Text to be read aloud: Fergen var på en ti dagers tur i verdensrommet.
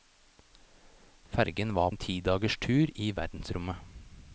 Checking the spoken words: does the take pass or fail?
fail